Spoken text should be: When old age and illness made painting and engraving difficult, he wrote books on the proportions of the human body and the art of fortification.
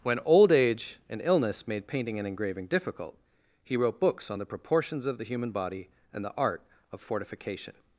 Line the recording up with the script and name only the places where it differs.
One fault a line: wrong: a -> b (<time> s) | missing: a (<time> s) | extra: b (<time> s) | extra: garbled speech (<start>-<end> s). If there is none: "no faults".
no faults